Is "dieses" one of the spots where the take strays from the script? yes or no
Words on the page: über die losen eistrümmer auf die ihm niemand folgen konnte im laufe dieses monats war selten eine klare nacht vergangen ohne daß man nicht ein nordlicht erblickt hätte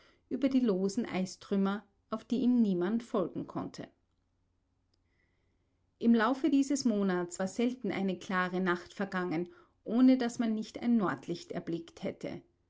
no